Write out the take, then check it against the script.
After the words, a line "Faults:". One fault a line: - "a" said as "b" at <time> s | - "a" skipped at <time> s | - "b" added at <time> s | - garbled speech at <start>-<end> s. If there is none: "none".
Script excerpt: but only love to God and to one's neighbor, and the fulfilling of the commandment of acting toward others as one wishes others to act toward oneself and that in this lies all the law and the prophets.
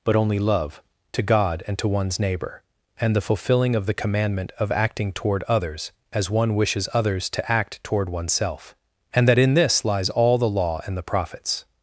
but only love to God and to one's neighbor, and the fulfilling of the commandment of acting toward others as one wishes others to act toward oneself and that in this lies all the law and the prophets.
Faults:
none